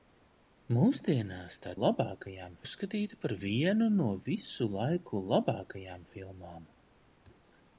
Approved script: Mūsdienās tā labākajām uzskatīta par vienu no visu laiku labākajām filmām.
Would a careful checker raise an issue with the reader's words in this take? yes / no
no